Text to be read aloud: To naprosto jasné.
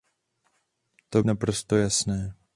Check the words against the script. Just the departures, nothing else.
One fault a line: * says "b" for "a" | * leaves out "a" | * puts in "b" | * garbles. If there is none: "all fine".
all fine